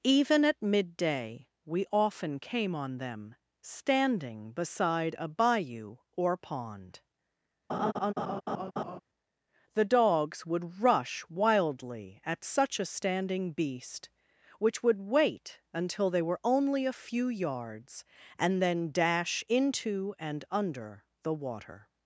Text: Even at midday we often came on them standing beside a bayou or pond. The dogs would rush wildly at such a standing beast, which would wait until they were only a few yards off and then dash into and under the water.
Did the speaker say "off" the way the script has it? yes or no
no